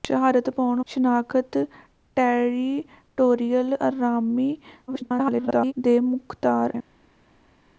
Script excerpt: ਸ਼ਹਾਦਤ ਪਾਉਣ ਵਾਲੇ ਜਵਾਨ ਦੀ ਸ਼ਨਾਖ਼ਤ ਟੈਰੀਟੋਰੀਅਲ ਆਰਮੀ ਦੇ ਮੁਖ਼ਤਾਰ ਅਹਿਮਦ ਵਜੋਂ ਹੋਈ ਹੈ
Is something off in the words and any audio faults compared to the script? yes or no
yes